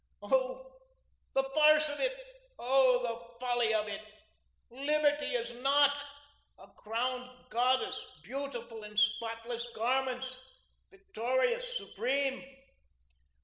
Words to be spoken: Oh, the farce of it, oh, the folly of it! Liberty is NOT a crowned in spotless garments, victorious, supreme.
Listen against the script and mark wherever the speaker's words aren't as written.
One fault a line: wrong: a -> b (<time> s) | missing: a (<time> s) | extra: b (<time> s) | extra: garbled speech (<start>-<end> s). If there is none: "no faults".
extra: goddess beautiful (7.5 s)